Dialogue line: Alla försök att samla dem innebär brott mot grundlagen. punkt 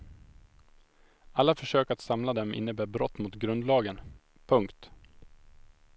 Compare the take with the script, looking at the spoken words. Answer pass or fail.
pass